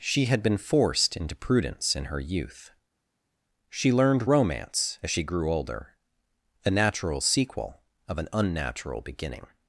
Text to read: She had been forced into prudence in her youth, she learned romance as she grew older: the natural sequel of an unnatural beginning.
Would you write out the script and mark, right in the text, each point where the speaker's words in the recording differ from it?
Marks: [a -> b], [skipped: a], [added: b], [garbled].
She had been forced into prudence in her youth, she learned romance as she grew older: [the -> a] natural sequel of an unnatural beginning.